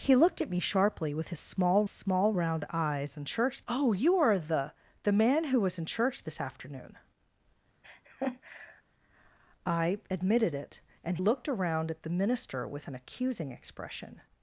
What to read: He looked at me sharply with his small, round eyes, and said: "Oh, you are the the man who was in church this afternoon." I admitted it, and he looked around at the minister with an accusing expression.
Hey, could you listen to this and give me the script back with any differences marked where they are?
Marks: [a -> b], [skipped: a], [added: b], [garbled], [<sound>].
He looked at me sharply with his small, [added: small] round eyes, and [said: -> church] "Oh, you are the the man who was in church this afternoon." [laugh] I admitted it, and [skipped: he] looked around at the minister with an accusing expression.